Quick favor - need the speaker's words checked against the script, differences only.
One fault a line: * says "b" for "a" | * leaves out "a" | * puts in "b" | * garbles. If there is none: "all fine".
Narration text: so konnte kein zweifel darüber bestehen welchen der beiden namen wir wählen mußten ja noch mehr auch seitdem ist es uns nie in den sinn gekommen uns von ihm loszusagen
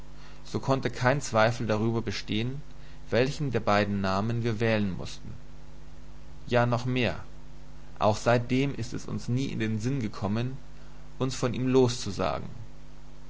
all fine